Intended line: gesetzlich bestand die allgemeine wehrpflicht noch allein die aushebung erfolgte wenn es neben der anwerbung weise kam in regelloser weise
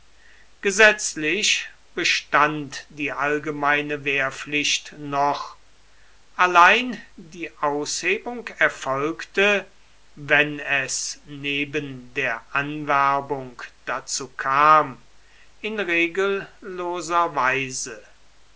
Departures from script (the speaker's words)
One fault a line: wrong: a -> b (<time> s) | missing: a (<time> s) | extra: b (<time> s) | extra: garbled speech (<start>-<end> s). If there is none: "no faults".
wrong: weise -> dazu (13.8 s)